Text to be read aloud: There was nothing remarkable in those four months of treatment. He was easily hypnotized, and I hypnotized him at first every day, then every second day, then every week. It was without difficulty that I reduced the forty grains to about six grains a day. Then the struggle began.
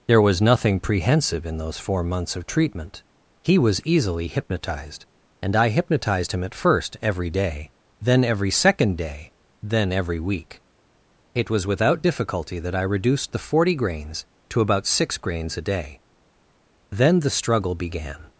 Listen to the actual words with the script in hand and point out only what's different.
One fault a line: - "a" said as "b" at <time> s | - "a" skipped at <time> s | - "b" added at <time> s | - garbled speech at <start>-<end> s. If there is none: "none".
- "remarkable" said as "prehensive" at 0.8 s